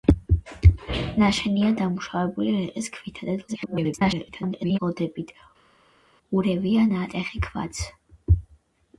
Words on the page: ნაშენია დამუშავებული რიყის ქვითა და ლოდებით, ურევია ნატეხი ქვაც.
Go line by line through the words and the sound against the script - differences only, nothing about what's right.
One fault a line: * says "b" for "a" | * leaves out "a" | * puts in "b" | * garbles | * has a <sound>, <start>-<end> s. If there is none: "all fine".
* garbles